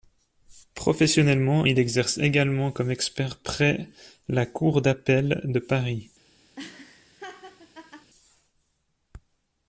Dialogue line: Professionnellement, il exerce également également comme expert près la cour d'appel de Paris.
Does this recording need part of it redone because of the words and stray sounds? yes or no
yes